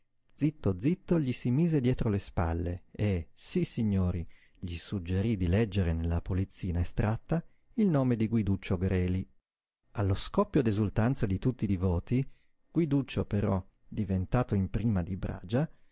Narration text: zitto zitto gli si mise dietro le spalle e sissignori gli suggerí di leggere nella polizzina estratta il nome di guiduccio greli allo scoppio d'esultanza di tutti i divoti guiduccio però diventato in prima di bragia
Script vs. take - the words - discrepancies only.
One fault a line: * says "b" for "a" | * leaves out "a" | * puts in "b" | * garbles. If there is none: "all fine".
all fine